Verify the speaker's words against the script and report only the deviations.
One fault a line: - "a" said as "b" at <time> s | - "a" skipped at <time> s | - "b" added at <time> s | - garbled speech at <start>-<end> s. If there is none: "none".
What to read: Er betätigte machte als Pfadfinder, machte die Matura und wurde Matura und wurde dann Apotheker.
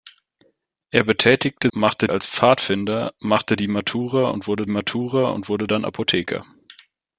none